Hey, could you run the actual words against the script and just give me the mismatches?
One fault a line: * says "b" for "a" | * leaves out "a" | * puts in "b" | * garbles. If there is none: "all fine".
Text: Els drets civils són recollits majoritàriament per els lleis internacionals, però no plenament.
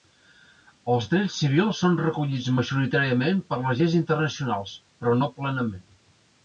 * says "les" for "els"